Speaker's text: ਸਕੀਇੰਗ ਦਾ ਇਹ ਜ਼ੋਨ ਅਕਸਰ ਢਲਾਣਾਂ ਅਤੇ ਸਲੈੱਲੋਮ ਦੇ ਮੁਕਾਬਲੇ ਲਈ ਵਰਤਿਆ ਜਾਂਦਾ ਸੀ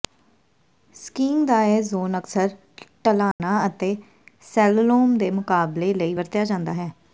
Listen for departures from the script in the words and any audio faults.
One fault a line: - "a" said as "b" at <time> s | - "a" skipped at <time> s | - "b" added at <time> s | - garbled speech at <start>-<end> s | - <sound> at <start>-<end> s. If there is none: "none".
- dropout at 3.3-3.4 s
- "ਸੀ" said as "ਹੈ" at 6.7 s